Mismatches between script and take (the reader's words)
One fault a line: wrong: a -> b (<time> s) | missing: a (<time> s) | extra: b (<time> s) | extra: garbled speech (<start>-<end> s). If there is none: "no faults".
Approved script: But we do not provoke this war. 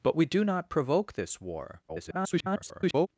extra: garbled speech (1.9-3.1 s)